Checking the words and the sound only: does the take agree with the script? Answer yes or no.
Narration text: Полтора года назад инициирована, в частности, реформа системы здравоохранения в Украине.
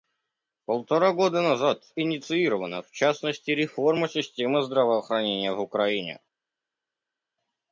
yes